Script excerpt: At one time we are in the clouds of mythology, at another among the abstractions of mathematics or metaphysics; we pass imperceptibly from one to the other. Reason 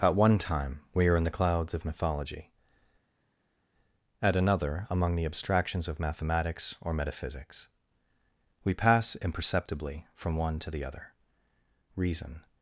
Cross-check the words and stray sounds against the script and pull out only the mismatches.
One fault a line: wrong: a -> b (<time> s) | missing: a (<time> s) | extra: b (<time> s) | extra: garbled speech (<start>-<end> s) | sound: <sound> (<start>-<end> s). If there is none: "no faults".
no faults